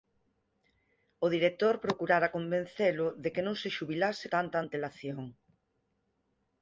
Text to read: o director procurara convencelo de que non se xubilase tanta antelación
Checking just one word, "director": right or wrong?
right